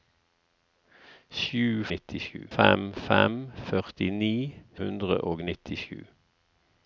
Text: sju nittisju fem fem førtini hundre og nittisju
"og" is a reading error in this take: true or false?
false